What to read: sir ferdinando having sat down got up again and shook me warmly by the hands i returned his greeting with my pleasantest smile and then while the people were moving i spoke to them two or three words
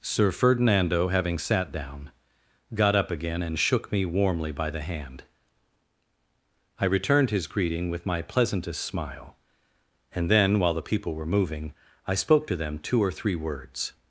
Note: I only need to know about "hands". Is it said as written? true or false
false